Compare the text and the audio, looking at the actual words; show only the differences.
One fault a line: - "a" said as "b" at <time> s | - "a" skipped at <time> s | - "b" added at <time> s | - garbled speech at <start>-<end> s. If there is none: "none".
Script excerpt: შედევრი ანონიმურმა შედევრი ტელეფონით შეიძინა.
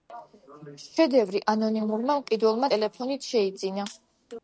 - "შედევრი" said as "მყიდველმა" at 2.2 s